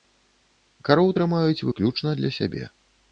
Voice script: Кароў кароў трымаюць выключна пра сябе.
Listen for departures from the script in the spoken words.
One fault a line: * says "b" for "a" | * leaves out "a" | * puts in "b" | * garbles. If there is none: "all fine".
* leaves out "кароў"
* says "для" for "пра"